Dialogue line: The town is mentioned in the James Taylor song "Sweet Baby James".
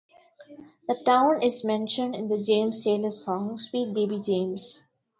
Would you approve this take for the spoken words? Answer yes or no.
yes